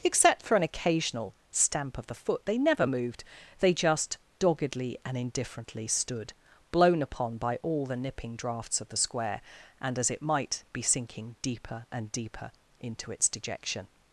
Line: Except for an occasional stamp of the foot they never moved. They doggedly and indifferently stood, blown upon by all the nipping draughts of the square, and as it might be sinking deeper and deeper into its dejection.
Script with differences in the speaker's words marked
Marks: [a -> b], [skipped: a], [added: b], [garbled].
Except for an occasional stamp of the foot they never moved. They [added: just] doggedly and indifferently stood, blown upon by all the nipping draughts of the square, and as it might be sinking deeper and deeper into its dejection.